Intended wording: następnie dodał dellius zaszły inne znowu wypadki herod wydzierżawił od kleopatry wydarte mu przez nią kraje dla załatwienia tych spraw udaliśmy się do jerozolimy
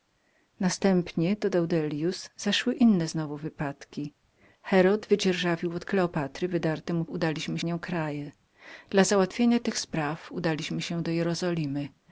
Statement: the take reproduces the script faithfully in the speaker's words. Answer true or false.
false